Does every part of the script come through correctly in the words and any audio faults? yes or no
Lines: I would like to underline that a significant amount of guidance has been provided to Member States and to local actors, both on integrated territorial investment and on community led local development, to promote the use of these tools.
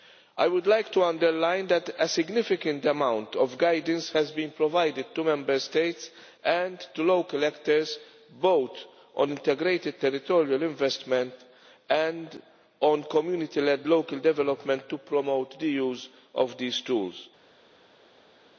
yes